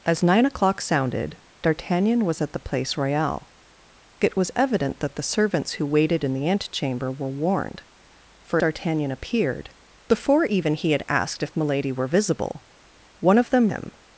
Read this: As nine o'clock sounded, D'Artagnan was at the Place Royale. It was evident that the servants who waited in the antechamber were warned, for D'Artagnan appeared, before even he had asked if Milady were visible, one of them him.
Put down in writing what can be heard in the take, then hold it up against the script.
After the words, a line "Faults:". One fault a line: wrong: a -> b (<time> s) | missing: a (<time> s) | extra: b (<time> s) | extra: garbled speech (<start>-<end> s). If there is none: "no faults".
As nine o'clock sounded, D'Artagnan was at the Place Royale. It was evident that the servants who waited in the antechamber were warned, for D'Artagnan appeared, before even he had asked if Milady were visible, one of them him.
Faults:
no faults